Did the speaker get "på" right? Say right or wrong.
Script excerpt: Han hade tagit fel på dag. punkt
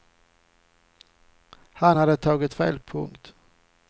wrong